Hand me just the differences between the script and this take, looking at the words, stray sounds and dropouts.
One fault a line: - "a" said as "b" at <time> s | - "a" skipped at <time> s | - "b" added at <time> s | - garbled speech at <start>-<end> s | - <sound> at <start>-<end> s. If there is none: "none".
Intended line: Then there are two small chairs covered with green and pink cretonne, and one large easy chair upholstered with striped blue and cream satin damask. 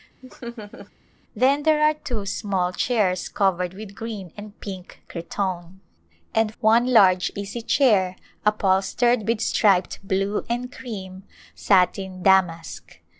- laugh at 0.2-0.9 s